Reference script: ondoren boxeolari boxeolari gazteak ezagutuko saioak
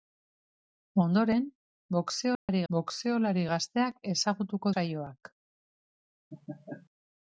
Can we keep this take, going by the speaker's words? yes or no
yes